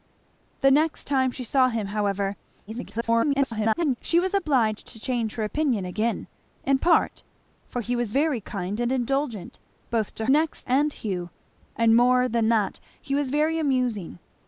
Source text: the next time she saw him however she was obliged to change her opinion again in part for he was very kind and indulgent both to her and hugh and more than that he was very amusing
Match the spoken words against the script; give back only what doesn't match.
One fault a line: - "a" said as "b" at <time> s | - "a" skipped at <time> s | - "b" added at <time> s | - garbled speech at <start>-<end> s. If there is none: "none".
- garbled speech at 2.7-4.0 s
- "her" said as "next" at 10.3 s